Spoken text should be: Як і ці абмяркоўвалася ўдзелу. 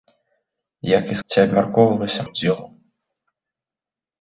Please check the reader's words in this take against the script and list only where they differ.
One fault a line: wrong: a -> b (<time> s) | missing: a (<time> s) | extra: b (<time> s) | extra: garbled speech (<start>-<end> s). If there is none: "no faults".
no faults